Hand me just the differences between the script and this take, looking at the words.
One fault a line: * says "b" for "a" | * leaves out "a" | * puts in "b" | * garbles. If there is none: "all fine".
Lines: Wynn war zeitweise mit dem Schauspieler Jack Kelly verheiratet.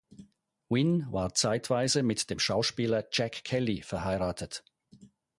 all fine